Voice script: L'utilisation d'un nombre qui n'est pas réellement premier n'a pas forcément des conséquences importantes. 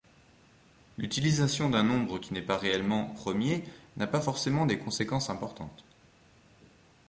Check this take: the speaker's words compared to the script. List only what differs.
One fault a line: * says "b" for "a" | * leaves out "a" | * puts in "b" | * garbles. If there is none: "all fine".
all fine